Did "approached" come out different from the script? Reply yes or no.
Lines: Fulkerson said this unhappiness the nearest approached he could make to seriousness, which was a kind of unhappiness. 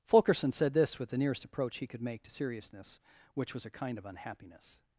yes